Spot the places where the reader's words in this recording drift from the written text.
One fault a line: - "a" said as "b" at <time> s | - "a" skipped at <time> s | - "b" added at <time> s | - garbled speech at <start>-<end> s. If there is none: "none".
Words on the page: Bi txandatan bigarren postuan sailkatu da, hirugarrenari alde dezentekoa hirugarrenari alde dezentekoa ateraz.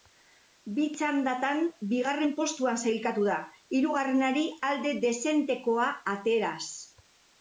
- "hirugarrenari alde dezentekoa" skipped at 5.9 s